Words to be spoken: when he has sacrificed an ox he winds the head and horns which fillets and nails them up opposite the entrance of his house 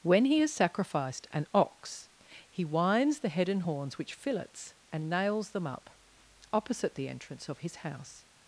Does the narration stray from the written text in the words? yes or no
no